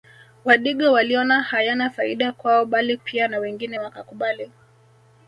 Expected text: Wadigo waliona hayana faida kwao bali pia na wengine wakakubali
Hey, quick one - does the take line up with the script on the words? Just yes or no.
yes